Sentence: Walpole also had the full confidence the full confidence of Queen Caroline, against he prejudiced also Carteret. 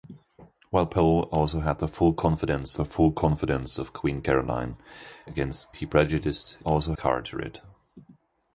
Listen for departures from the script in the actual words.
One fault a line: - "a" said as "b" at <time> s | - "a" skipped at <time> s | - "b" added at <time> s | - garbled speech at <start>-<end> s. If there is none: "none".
none